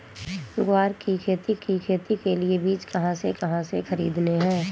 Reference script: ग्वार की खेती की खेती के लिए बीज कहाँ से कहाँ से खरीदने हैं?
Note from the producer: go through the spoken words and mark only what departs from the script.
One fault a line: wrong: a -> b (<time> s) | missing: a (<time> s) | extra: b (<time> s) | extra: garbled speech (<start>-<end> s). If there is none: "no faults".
no faults